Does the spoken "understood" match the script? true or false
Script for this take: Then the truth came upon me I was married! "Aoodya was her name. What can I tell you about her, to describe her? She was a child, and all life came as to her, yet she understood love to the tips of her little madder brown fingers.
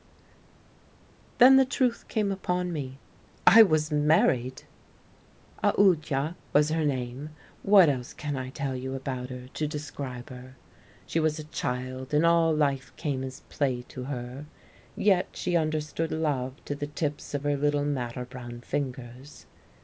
true